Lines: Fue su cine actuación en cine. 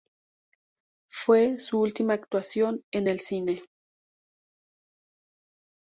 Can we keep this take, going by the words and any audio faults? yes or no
no